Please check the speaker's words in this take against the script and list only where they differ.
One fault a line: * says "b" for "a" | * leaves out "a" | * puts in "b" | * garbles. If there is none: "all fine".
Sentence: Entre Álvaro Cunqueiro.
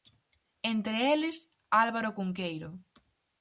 * puts in "eles"